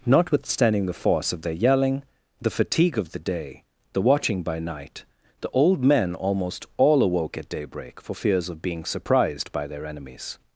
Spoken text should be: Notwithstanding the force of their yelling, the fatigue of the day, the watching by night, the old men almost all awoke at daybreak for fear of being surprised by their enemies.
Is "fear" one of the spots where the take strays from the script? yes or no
yes